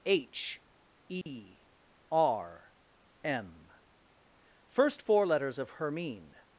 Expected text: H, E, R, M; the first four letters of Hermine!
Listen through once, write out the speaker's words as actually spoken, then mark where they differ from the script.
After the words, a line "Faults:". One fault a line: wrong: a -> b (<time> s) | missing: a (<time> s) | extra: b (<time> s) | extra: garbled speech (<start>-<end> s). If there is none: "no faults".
H, E, R, M; first four letters of Hermine!
Faults:
missing: the (3.7 s)